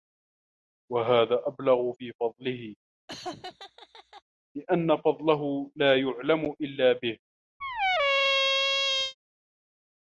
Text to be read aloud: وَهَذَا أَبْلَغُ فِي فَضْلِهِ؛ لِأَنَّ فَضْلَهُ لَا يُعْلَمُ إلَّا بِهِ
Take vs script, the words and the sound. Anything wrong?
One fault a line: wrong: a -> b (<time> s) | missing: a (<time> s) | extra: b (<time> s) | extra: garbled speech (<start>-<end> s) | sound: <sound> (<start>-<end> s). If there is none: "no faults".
sound: laugh (3.1-4.2 s)
sound: squeak (7.6-9.1 s)